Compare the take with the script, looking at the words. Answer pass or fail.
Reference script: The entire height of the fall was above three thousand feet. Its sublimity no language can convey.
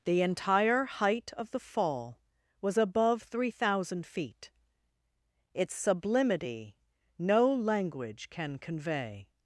pass